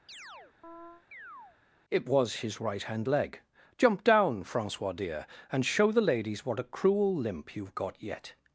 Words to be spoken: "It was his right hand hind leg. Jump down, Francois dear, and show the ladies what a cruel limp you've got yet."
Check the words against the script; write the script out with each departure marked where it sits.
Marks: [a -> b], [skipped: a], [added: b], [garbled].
"It was his right hand [skipped: hind] leg. Jump down, Francois dear, and show the ladies what a cruel limp you've got yet."